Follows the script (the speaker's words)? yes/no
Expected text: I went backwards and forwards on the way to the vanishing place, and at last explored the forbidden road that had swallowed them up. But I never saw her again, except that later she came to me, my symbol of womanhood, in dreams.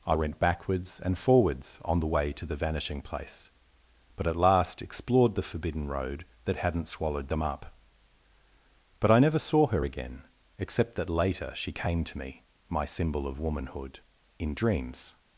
no